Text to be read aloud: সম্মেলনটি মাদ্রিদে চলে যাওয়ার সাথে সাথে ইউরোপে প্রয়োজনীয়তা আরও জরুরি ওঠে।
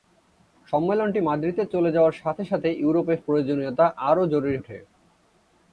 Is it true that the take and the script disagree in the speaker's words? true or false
false